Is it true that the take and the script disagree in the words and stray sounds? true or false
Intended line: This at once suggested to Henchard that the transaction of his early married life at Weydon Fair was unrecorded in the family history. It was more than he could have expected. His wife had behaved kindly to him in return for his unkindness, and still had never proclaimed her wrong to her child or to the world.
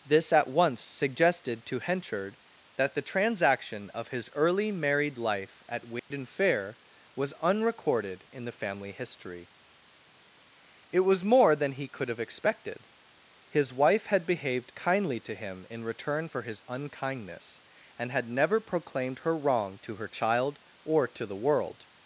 true